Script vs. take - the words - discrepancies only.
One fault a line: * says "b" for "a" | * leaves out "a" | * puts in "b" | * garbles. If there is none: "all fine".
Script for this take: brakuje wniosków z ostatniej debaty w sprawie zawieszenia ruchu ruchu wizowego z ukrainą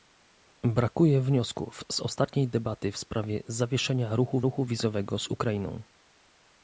all fine